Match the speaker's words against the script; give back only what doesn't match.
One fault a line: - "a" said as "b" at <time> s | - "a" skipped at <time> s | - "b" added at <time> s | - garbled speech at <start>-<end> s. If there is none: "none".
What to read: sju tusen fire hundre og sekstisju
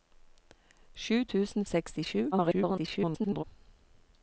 - "fire hundre" skipped at 1.7 s
- garbled speech at 2.3-3.4 s